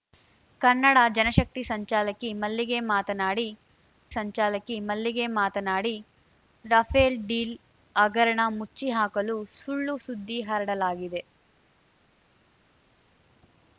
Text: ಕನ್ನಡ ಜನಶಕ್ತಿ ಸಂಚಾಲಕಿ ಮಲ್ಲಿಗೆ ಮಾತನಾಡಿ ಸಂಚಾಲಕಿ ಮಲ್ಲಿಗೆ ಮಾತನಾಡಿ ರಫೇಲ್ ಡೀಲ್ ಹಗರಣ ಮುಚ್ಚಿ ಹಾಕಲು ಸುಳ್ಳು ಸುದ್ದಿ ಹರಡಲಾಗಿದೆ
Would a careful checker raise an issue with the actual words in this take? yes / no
no